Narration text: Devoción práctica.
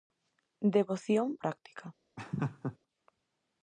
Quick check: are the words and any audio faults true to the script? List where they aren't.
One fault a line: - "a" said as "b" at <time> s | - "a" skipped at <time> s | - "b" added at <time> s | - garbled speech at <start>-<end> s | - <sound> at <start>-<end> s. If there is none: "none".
- laugh at 2.2-2.8 s